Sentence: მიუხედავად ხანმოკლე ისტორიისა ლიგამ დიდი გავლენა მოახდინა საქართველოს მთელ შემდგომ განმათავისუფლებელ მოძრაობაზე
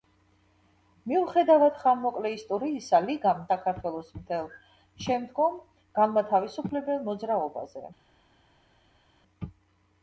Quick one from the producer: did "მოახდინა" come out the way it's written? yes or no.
no